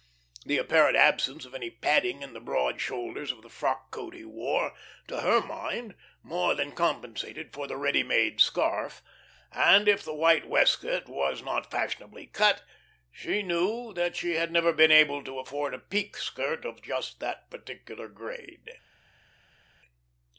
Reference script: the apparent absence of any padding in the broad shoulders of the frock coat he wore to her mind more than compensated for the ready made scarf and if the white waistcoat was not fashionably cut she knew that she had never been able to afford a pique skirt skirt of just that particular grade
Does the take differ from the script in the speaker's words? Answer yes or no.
yes